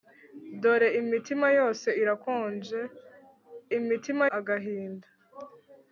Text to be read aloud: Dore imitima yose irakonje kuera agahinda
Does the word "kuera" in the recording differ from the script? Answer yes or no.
yes